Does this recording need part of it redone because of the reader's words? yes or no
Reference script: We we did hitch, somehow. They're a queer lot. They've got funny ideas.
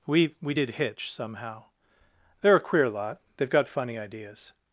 no